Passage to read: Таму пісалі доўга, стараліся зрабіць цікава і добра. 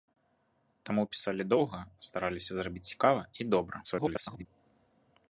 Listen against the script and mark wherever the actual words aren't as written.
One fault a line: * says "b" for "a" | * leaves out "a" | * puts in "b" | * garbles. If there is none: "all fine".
* garbles